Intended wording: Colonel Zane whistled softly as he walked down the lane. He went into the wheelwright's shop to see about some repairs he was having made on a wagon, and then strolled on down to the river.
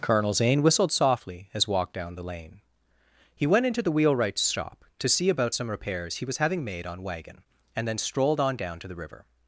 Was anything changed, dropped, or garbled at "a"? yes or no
yes